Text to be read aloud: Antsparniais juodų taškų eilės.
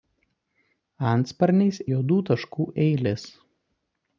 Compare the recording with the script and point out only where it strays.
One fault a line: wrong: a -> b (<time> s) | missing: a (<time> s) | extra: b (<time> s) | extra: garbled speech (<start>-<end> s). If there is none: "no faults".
no faults